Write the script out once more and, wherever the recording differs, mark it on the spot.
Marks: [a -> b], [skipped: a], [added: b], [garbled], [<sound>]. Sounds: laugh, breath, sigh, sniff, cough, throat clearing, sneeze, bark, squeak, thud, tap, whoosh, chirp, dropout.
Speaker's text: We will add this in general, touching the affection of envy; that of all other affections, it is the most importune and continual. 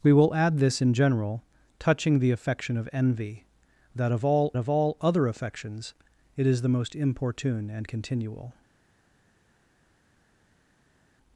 We will add this in general, touching the affection of envy; that of all [added: of all] other affections, it is the most importune and continual.